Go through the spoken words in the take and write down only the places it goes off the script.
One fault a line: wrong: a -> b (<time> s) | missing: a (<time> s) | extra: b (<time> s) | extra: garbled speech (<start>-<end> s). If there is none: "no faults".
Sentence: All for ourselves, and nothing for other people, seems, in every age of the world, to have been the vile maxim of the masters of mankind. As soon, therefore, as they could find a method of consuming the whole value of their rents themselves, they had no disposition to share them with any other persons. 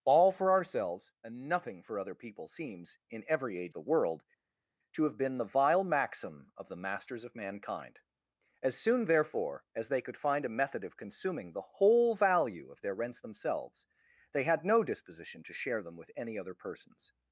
missing: of (3.8 s)